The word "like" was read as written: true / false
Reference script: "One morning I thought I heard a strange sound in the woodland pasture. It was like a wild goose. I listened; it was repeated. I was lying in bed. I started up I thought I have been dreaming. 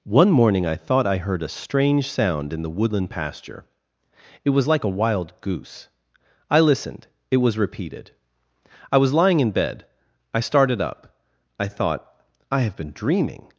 true